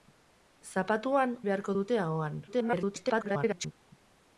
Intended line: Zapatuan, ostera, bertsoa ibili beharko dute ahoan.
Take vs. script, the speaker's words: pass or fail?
fail